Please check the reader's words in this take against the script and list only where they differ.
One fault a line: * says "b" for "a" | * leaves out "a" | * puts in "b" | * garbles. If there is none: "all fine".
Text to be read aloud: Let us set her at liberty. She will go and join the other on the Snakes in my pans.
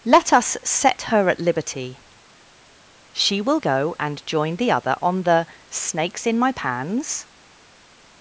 all fine